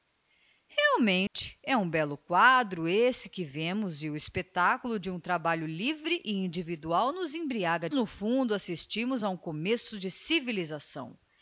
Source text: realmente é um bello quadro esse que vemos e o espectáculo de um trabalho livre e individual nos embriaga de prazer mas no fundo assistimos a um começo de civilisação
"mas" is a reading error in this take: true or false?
true